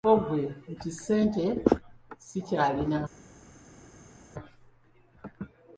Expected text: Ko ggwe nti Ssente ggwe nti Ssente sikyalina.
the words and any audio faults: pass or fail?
fail